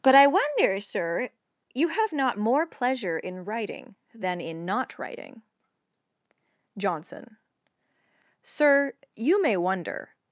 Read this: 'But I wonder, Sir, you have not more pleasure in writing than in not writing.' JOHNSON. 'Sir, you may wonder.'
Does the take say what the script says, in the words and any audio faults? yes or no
yes